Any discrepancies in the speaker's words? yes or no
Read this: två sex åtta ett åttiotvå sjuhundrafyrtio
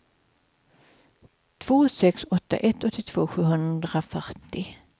no